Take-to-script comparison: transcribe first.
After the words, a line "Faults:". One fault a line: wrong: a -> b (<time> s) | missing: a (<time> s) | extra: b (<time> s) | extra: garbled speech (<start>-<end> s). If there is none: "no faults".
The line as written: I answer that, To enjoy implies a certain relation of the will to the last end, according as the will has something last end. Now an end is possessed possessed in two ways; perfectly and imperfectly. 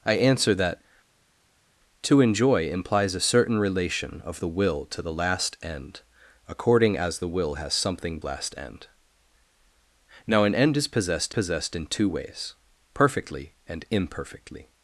I answer that, To enjoy implies a certain relation of the will to the last end, according as the will has something last end. Now an end is possessed possessed in two ways; perfectly and imperfectly.
Faults:
no faults